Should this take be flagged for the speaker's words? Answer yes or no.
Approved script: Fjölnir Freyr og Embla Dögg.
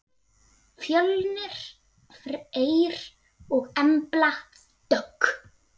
no